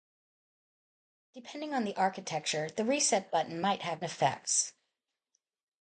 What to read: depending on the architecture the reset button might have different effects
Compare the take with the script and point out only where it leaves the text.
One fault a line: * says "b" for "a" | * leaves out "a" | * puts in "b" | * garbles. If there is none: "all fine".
* leaves out "different"